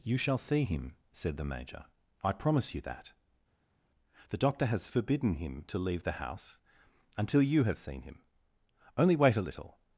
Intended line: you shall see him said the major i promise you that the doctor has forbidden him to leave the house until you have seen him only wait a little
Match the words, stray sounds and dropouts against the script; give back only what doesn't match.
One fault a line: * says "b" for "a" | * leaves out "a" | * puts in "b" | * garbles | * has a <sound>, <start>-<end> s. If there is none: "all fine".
all fine